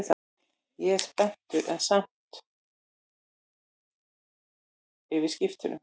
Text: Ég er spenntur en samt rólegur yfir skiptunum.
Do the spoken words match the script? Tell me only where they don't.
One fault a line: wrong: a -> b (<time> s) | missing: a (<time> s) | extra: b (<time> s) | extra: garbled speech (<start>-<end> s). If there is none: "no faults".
missing: rólegur (2.4 s)